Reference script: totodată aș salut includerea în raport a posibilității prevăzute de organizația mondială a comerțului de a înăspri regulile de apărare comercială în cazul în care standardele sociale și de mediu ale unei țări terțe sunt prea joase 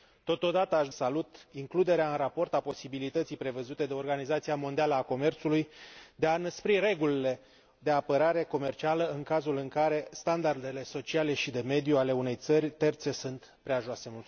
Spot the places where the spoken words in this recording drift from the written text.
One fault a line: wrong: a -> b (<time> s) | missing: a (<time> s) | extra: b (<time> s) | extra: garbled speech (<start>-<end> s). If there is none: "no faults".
no faults